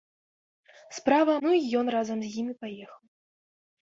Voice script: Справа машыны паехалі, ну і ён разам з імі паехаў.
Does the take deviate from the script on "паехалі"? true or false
true